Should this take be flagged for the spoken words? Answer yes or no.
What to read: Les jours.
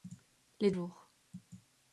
no